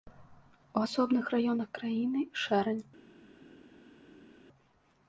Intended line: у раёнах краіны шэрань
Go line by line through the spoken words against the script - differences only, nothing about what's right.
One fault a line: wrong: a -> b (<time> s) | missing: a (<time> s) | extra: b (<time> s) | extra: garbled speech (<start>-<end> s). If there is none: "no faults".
extra: асобных (0.8 s)